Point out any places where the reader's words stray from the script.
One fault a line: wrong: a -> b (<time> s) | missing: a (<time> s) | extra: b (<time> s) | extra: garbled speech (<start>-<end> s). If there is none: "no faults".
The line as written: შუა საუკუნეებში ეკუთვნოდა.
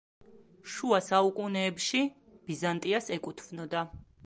extra: ბიზანტიას (2.5 s)